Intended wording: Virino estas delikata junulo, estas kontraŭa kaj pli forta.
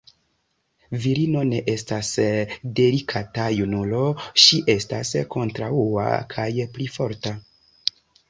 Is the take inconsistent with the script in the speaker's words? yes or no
yes